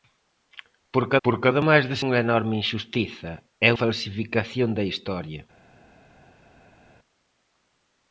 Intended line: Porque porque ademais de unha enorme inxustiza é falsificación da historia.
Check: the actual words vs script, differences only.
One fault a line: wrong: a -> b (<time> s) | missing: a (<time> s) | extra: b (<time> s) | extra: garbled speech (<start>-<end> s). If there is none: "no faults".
no faults